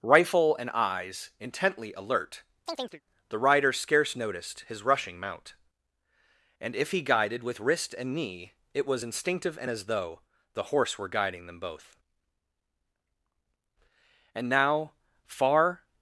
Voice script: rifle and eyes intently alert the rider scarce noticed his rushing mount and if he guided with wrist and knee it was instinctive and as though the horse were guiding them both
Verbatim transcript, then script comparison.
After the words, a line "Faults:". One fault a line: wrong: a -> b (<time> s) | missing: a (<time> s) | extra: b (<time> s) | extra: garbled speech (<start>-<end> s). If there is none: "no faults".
rifle and eyes intently alert the rider scarce noticed his rushing mount and if he guided with wrist and knee it was instinctive and as though the horse were guiding them both and now far
Faults:
extra: and now far (14.4 s)